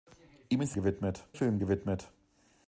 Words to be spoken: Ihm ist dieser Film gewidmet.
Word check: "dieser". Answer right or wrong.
wrong